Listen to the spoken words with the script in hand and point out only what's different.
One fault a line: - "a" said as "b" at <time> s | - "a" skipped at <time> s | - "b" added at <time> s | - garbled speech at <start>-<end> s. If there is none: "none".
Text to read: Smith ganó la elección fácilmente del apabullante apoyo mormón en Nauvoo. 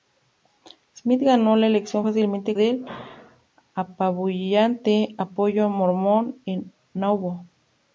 none